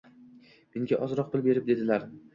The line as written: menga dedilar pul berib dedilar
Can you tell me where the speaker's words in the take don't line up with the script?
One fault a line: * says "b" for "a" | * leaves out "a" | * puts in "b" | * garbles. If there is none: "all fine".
* says "ozroq" for "dedilar"